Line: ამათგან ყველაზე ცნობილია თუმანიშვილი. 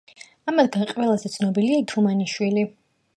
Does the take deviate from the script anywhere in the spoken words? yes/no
no